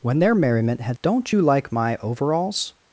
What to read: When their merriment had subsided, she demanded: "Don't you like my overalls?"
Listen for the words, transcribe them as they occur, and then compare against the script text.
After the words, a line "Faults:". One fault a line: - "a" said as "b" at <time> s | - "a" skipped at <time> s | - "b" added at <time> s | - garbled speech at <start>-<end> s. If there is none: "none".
When their merriment had: "Don't you like my overalls?"
Faults:
- "subsided she demanded" skipped at 1.0 s